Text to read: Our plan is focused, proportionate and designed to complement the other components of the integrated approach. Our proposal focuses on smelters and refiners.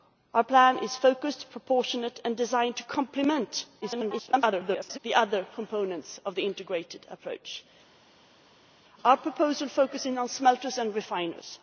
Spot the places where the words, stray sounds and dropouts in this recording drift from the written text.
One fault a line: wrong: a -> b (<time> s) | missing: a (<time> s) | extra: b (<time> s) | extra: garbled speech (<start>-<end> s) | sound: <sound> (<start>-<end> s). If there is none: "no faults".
extra: garbled speech (3.8-5.0 s)